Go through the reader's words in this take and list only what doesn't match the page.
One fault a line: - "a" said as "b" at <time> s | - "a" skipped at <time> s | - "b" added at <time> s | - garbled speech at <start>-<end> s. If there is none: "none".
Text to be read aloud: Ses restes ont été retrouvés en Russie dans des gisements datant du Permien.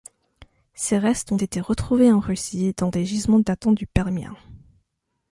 none